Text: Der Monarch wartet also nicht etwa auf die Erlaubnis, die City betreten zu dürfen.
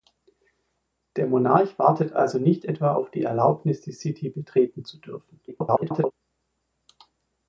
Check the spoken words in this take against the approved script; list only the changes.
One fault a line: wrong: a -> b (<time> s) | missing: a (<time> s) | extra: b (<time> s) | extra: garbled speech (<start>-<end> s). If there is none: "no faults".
extra: garbled speech (5.5-6.1 s)